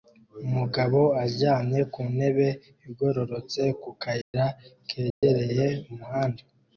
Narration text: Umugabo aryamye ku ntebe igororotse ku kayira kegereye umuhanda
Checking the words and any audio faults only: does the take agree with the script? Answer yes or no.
no